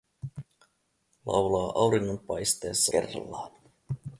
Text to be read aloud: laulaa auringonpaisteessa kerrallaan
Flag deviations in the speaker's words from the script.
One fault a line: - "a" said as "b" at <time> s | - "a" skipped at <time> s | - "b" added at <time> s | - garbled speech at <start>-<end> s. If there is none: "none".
none